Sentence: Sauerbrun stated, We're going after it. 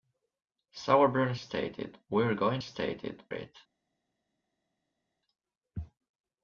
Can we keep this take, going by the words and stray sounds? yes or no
no